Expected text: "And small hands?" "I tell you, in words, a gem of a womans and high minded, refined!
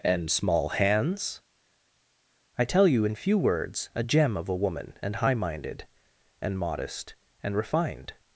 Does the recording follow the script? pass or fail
fail